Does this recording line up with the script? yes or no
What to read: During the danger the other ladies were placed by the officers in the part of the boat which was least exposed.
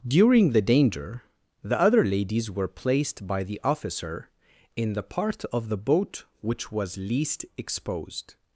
no